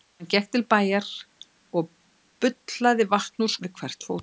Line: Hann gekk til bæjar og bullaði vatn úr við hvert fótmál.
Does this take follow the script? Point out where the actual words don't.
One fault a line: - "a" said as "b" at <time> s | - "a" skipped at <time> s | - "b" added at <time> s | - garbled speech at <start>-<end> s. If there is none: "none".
none